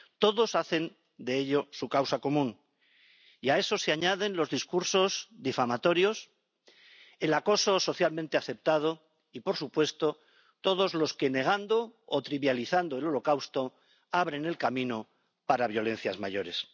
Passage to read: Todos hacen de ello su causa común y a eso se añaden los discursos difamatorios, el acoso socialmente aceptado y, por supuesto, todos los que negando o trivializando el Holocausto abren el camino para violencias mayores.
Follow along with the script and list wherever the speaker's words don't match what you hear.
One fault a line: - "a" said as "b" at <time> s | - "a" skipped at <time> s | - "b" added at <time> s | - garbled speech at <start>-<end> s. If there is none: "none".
none